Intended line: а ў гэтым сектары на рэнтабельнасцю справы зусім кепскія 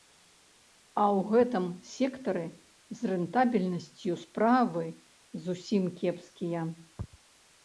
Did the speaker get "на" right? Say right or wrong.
wrong